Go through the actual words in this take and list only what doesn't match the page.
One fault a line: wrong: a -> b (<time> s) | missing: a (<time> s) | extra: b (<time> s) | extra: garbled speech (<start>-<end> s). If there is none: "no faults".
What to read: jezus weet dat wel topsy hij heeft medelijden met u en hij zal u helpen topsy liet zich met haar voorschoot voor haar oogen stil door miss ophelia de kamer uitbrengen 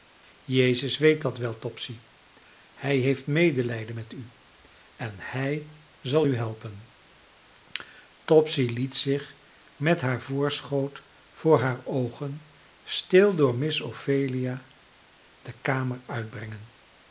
no faults